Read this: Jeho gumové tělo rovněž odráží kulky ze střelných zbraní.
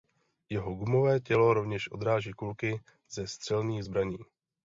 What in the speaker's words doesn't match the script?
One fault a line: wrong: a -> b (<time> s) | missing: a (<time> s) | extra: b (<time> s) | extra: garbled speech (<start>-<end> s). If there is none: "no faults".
no faults